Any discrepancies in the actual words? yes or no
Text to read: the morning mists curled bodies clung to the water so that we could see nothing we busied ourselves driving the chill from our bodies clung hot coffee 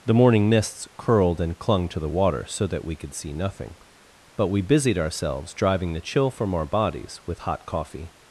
yes